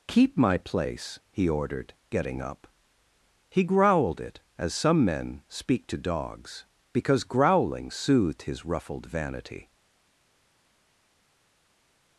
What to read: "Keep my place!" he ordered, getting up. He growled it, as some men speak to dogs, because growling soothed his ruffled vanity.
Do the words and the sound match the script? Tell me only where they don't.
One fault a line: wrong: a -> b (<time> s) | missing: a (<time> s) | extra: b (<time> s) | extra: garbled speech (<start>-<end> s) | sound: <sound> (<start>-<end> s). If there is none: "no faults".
no faults